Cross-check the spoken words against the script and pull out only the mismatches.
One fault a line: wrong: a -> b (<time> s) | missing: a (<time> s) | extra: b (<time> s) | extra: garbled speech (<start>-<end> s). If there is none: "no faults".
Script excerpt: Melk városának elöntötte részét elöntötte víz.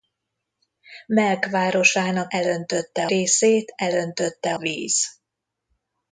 no faults